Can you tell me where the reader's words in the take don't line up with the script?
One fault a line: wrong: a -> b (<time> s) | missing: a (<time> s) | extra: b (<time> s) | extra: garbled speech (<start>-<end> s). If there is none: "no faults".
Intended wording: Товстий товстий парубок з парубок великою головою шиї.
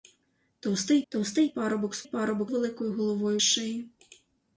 no faults